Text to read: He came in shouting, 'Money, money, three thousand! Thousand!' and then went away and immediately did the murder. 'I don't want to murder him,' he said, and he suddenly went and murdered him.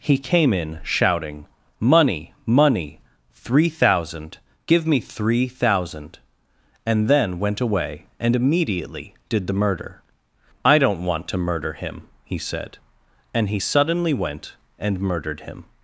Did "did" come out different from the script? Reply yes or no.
no